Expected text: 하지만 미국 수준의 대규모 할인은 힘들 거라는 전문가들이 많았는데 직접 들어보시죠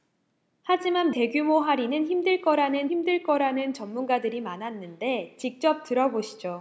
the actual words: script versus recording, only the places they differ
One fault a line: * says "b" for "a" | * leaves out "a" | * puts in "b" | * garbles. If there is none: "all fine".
* says "대규모 할인은 힘들 거라는" for "미국 수준의 대규모 할인은"